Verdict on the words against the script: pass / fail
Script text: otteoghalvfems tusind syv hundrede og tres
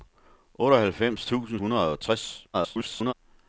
fail